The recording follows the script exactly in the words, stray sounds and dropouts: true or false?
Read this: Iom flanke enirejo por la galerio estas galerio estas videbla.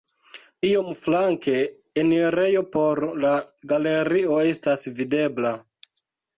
false